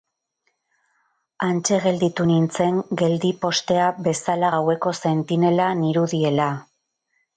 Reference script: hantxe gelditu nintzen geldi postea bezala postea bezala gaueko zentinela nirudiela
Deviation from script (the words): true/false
true